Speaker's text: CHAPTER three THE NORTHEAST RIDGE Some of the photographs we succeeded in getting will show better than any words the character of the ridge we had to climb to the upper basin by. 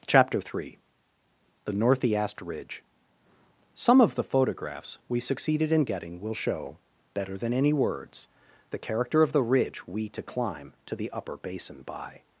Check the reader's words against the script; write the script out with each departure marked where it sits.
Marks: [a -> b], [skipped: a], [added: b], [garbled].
CHAPTER three THE NORTHEAST RIDGE Some of the photographs we succeeded in getting will show better than any words the character of the ridge we [skipped: had] to climb to the upper basin by.